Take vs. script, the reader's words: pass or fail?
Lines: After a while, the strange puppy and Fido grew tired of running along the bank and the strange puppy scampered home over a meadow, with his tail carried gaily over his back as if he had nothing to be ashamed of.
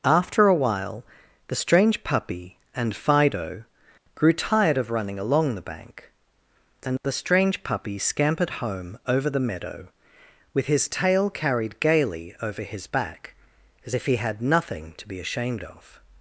fail